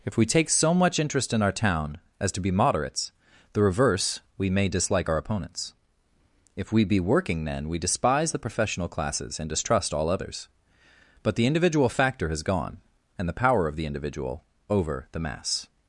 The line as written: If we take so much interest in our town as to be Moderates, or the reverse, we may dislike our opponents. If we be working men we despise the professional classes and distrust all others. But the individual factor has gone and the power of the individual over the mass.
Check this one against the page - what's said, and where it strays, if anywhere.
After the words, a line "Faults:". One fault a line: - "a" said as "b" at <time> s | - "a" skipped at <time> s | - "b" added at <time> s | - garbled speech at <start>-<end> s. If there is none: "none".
If we take so much interest in our town as to be Moderates, the reverse, we may dislike our opponents. If we be working men we despise the professional classes and distrust all others. But the individual factor has gone and the power of the individual over the mass.
Faults:
- "or" skipped at 3.1 s